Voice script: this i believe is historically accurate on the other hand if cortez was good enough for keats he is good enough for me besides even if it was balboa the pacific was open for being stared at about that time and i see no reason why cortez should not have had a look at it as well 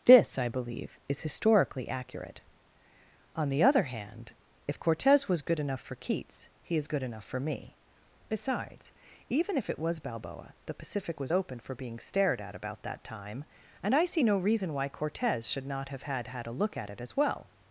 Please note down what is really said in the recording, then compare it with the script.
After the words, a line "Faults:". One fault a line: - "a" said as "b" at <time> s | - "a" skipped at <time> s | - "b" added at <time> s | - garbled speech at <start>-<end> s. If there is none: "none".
this i believe is historically accurate on the other hand if cortez was good enough for keats he is good enough for me besides even if it was balboa the pacific was open for being stared at about that time and i see no reason why cortez should not have had had a look at it as well
Faults:
- "had" added at 16.3 s